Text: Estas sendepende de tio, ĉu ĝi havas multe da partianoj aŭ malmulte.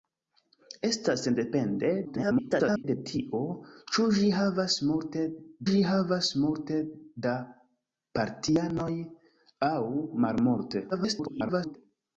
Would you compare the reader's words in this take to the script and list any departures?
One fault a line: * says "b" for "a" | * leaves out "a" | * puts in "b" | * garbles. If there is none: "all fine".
* garbles
* puts in "ĝi havas multe"
* garbles